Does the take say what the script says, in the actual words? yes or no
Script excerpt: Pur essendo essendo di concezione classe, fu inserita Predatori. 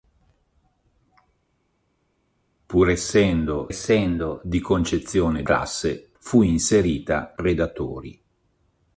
yes